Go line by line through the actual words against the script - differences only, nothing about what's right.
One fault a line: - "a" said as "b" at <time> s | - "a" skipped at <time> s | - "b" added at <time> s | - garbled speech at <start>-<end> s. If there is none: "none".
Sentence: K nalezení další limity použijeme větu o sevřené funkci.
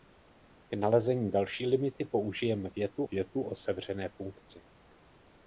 - "větu" added at 3.0 s